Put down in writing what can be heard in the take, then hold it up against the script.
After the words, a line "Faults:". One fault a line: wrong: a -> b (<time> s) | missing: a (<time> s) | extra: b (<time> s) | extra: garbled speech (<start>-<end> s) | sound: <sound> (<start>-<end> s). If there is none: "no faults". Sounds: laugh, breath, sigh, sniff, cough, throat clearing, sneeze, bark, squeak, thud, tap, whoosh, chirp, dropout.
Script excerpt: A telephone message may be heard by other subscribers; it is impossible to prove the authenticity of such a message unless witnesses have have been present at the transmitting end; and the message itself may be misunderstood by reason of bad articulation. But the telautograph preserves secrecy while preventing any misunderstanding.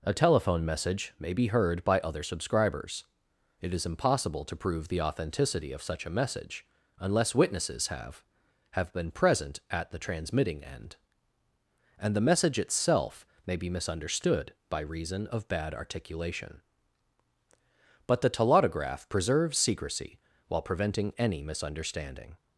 A telephone message may be heard by other subscribers; it is impossible to prove the authenticity of such a message unless witnesses have have been present at the transmitting end; and the message itself may be misunderstood by reason of bad articulation. But the telautograph preserves secrecy while preventing any misunderstanding.
Faults:
no faults